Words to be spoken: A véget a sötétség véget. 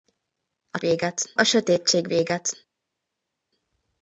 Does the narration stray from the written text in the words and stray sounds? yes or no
no